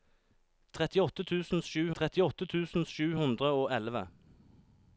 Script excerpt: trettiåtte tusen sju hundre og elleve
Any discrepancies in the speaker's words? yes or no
yes